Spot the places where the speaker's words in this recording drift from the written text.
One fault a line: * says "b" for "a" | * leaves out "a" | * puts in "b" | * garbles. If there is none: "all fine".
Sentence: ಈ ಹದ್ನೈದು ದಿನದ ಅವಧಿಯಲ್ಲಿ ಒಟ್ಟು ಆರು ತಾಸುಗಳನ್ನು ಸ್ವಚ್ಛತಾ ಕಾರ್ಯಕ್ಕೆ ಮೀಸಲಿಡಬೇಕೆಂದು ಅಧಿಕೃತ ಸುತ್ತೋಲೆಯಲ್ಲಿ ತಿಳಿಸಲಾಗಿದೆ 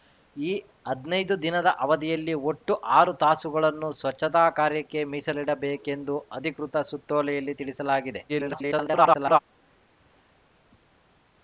* garbles